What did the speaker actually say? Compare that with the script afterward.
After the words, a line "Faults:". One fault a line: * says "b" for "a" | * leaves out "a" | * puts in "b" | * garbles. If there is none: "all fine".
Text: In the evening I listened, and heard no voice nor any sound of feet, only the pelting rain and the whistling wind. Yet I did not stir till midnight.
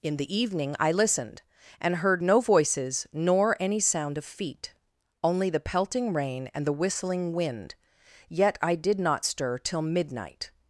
In the evening I listened, and heard no voices nor any sound of feet, only the pelting rain and the whistling wind. Yet I did not stir till midnight.
Faults:
* says "voices" for "voice"